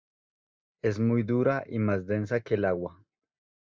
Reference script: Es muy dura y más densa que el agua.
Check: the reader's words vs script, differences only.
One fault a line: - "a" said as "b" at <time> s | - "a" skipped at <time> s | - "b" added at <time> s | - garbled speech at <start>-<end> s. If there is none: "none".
none